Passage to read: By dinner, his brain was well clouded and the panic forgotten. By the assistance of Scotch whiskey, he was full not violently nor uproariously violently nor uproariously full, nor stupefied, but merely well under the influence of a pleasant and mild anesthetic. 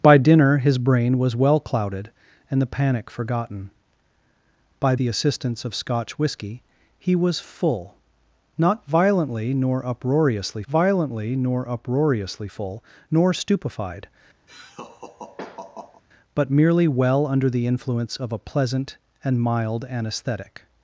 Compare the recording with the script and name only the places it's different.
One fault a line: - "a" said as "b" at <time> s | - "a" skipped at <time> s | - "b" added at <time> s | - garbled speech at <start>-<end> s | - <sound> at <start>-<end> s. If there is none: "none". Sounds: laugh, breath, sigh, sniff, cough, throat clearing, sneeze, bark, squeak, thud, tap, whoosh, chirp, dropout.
- laugh at 14.5-16.0 s